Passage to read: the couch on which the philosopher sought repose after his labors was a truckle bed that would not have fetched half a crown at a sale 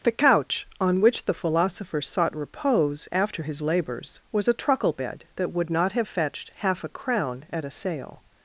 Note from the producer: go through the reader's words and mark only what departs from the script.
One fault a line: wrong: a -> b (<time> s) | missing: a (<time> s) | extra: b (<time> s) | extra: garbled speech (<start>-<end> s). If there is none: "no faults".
no faults